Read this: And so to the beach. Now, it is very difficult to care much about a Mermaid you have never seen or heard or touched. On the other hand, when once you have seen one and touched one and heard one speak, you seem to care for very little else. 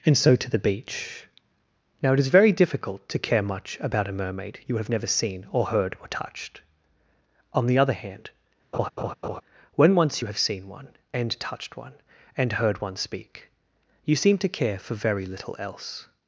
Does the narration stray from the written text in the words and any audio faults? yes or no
yes